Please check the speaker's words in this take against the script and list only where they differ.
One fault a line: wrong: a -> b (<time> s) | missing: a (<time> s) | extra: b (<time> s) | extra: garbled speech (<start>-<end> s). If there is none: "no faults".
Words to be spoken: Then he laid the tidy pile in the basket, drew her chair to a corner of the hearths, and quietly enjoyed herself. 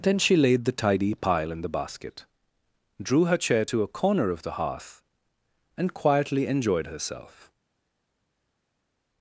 wrong: he -> she (0.2 s)
wrong: hearths -> hearth (4.5 s)